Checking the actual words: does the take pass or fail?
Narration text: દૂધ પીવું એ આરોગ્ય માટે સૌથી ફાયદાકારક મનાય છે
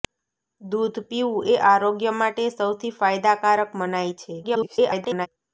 fail